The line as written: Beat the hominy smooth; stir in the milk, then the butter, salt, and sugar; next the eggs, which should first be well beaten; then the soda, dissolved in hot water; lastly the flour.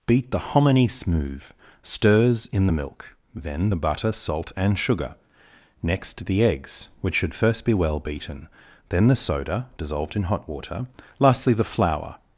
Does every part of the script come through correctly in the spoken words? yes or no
no